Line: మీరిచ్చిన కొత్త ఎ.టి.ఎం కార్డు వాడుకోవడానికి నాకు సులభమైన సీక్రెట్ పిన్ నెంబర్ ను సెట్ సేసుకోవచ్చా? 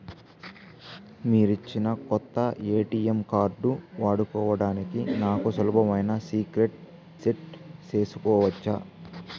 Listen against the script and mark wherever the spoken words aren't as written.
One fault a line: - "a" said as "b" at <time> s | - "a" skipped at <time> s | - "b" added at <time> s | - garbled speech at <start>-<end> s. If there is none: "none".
- "పిన్ నెంబర్ ను" skipped at 6.8 s